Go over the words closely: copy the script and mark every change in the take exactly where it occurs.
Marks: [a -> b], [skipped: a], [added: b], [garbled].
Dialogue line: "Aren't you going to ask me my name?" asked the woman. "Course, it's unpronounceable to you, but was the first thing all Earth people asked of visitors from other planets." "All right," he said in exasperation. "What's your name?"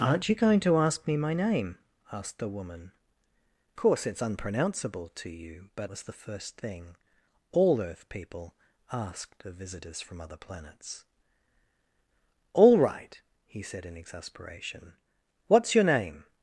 "Aren't you going to ask me my name?" asked the woman. "Course, it's unpronounceable to you, but was the first thing all Earth people asked of visitors from other planets." "All right," he said in exasperation. "What's your name?"